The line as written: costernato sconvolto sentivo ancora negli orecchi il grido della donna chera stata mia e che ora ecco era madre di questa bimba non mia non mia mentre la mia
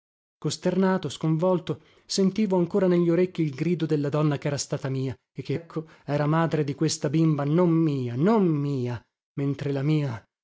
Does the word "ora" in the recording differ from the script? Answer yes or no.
yes